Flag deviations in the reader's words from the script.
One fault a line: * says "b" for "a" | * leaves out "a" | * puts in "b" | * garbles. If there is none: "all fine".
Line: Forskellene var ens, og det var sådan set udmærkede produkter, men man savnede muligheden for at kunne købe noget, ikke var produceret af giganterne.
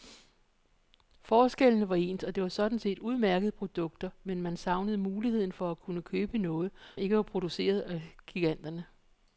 all fine